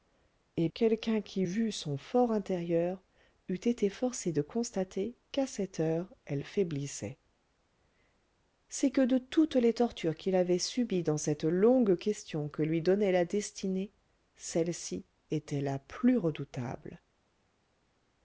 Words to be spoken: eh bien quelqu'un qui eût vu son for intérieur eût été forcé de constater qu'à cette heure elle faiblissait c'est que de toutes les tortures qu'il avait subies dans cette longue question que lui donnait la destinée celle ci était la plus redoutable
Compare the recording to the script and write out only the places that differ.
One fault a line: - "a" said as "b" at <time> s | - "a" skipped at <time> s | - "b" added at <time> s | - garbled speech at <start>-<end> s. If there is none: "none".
- "bien" skipped at 0.7 s
- "eût" skipped at 1.4 s